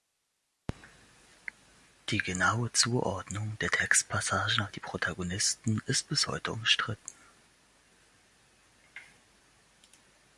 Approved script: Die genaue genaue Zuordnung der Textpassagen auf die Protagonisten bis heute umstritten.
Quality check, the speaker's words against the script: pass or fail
fail